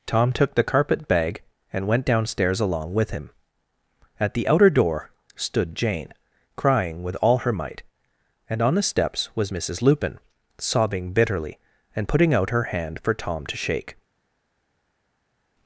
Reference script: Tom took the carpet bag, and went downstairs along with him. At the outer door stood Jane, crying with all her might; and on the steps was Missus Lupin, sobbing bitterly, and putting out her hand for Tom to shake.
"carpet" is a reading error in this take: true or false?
false